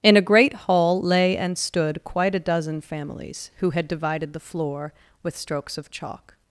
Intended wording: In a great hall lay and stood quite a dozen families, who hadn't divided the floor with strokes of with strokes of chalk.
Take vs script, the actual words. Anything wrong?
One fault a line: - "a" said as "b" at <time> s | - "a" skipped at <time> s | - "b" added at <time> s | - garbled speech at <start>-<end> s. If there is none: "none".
- "hadn't" said as "had" at 3.7 s
- "with strokes of" skipped at 5.9 s